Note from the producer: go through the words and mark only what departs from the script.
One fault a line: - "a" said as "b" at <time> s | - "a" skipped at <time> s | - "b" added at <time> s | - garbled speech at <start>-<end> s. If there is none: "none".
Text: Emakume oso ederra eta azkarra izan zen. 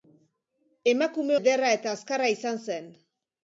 - "oso" skipped at 1.4 s